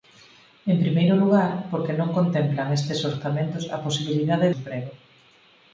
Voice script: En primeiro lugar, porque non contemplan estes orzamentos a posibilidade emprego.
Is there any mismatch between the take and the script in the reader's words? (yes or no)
no